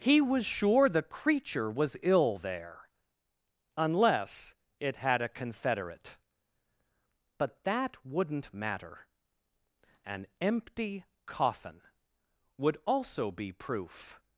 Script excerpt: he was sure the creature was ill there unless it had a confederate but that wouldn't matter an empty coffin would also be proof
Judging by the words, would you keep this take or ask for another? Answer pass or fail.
pass